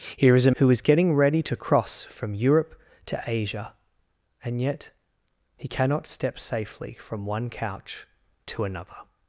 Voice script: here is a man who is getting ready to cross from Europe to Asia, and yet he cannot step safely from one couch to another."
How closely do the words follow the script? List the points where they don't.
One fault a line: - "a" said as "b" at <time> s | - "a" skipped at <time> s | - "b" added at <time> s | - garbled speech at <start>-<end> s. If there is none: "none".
- "man" skipped at 0.5 s